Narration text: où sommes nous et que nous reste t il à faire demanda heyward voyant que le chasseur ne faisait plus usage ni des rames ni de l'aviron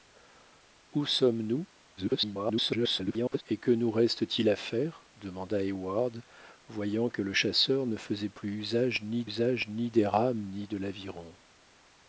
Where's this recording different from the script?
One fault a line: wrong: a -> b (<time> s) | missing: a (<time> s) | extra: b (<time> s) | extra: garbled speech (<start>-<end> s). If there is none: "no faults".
extra: garbled speech (2.0-3.4 s)
extra: usage ni (9.3 s)